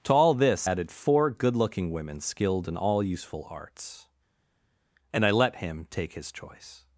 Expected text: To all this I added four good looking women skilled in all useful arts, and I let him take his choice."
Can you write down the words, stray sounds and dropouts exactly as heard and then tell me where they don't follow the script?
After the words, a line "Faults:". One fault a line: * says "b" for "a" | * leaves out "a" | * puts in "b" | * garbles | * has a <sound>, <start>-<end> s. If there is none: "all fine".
To all this added four good looking women skilled in all useful arts, and I let him take his choice."
Faults:
* leaves out "I"